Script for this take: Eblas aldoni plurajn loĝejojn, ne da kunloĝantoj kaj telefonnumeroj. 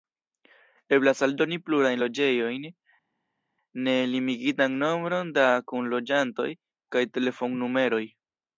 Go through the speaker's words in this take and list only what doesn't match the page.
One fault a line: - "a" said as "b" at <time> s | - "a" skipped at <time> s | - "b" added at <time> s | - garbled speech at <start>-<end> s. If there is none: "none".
- "limigitan nombron" added at 4.2 s